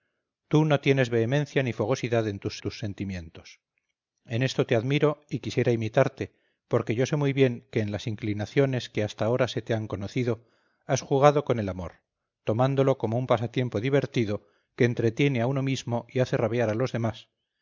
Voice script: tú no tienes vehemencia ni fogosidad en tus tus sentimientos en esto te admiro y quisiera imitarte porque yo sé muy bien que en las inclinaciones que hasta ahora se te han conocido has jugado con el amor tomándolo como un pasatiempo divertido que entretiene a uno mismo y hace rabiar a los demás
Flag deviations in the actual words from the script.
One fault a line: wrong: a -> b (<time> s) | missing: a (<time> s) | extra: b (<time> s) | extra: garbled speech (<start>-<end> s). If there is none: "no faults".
no faults